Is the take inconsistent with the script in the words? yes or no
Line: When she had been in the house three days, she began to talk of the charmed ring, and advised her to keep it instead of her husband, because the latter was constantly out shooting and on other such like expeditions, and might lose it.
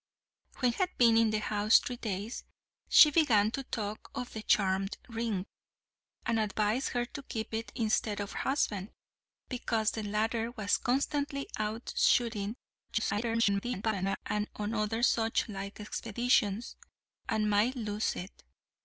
yes